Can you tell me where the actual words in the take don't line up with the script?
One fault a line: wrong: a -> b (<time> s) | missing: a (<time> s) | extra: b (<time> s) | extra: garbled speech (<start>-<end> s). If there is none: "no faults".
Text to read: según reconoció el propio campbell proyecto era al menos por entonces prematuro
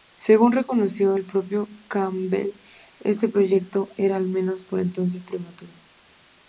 extra: este (3.0 s)